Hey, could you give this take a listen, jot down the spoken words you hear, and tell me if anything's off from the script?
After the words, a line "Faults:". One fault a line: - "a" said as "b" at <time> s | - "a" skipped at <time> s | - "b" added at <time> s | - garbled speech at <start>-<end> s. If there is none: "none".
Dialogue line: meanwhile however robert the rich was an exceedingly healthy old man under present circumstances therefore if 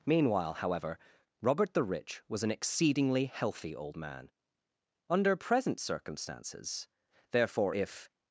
meanwhile however robert the rich was an exceedingly healthy old man under present circumstances therefore if
Faults:
none